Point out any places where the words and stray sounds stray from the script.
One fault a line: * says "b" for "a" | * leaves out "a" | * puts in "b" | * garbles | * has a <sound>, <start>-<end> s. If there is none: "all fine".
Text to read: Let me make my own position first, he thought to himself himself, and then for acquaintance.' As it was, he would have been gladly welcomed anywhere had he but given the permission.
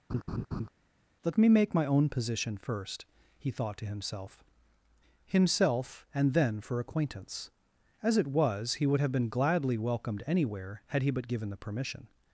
* has a laugh, 0.1-0.7 s